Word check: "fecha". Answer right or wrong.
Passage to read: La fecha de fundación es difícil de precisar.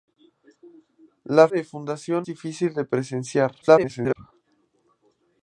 wrong